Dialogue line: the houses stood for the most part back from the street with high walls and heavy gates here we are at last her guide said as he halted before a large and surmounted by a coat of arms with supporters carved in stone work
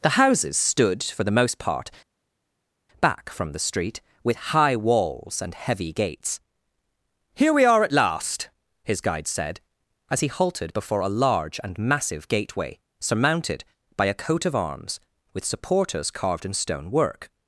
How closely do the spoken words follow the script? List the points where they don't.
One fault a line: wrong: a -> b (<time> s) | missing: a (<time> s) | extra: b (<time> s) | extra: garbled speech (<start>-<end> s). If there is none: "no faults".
wrong: her -> his (8.8 s)
extra: massive gateway (11.8 s)